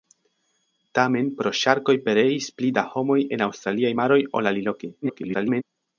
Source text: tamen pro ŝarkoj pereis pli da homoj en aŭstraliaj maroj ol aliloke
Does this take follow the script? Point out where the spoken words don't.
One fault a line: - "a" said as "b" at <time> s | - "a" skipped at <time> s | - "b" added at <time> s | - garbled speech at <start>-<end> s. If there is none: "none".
- garbled speech at 5.0-5.6 s